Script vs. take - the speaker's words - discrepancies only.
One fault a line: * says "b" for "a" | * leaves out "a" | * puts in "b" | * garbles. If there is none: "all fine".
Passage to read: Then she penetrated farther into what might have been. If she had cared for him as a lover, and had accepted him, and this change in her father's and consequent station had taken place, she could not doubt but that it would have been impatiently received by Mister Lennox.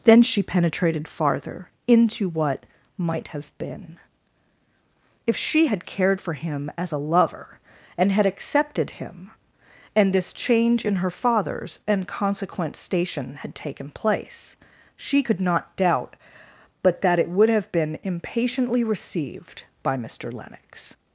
all fine